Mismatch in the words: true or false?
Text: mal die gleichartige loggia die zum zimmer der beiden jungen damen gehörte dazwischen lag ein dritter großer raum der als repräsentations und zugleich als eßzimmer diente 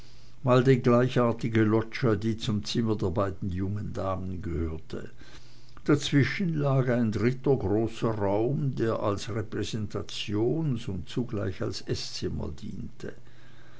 false